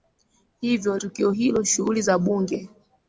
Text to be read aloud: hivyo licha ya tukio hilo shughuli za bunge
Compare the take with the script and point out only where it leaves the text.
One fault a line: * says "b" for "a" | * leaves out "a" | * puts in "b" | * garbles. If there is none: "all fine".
* leaves out "licha ya"